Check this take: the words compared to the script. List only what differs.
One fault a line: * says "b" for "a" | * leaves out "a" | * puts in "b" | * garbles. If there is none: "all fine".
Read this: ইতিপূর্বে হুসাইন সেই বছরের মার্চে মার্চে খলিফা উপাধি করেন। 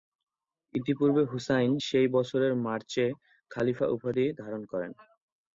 * leaves out "মার্চে"
* puts in "ধারণ"